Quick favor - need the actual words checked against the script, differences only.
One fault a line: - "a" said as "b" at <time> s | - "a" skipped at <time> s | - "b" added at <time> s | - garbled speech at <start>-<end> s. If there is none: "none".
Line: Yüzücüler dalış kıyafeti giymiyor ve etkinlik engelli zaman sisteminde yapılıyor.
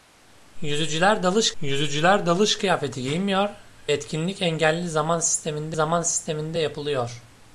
- "yüzücüler dalış" added at 1.6 s
- "ve" skipped at 3.5 s
- "zaman sisteminde" added at 5.7 s